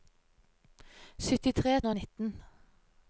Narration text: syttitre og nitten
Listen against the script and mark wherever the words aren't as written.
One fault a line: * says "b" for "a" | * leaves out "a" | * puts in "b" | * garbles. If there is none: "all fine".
all fine